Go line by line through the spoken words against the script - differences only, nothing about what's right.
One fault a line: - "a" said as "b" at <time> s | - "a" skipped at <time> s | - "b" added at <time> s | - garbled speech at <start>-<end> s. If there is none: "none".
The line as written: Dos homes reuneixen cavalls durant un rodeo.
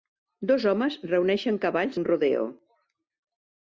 - "durant" skipped at 2.0 s